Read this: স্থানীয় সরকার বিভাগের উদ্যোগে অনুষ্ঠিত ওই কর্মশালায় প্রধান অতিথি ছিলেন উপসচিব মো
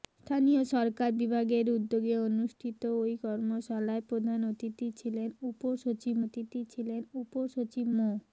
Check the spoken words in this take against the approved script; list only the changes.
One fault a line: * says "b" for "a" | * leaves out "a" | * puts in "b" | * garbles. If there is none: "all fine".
* puts in "অতিথি ছিলেন উপসচিব"